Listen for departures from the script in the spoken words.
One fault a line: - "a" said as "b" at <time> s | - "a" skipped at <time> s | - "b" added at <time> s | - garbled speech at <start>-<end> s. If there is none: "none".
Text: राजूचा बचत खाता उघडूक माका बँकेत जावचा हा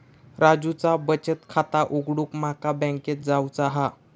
none